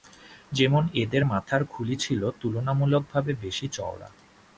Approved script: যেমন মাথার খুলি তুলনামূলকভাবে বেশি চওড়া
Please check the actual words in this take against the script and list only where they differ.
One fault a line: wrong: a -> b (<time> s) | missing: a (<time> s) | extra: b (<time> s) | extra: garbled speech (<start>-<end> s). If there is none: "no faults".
extra: এদের (0.9 s)
extra: ছিল (2.0 s)